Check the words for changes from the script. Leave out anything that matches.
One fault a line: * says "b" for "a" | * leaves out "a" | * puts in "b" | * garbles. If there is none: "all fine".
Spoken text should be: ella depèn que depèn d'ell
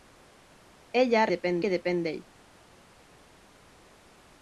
all fine